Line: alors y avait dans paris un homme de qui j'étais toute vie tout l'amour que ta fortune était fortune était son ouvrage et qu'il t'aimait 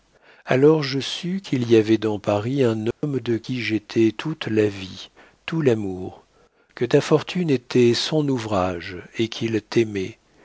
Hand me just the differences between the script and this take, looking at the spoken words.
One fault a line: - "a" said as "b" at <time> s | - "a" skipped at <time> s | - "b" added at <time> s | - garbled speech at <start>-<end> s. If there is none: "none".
- "je sus qu'il" added at 0.8 s
- "la" added at 4.4 s
- "fortune était" skipped at 7.9 s